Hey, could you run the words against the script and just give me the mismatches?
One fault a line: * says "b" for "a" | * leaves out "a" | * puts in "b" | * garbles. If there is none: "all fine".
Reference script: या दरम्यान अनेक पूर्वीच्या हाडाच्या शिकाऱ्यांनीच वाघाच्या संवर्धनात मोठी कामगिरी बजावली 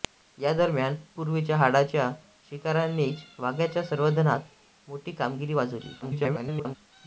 * leaves out "अनेक"
* garbles